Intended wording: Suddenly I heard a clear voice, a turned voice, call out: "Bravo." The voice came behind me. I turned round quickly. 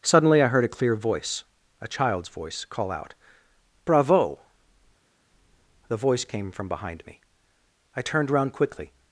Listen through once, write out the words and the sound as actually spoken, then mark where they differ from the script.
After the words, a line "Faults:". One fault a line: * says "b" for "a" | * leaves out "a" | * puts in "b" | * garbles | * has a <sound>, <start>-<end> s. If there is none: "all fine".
Suddenly I heard a clear voice, a child's voice, call out: "Bravo." The voice came from behind me. I turned round quickly.
Faults:
* says "child's" for "turned"
* puts in "from"